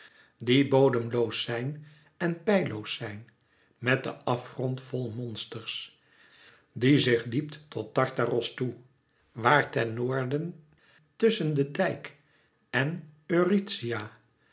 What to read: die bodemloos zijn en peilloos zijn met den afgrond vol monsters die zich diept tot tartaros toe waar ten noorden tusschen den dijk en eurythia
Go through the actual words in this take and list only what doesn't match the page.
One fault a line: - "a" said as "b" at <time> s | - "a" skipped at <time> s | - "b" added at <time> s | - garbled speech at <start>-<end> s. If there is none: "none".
none